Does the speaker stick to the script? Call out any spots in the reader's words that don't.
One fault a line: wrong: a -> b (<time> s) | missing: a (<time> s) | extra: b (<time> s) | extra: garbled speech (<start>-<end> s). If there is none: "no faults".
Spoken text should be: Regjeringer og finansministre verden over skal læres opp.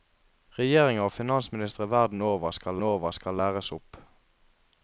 extra: over skal (2.8 s)